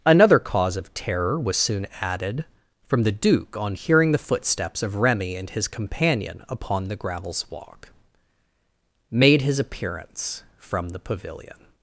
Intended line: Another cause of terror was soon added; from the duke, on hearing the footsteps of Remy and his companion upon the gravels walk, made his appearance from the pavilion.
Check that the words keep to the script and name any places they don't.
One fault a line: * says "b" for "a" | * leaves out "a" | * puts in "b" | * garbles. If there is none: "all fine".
all fine